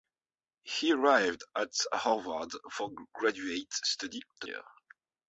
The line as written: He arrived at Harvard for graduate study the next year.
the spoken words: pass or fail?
fail